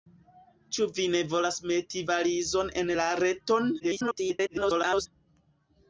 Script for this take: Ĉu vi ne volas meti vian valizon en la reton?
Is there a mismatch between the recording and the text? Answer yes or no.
yes